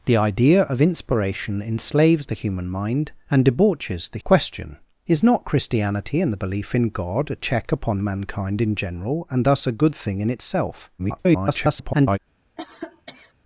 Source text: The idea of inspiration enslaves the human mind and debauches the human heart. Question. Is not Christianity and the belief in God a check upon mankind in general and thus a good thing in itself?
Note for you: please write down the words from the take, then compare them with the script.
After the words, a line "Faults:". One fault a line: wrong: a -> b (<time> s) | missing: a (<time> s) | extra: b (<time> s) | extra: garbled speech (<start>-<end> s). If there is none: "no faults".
The idea of inspiration enslaves the human mind and debauches the. Question. Is not Christianity and the belief in God a check upon mankind in general and thus a good thing in itself? [garbled]
Faults:
missing: human heart (4.2 s)
extra: garbled speech (11.0-12.2 s)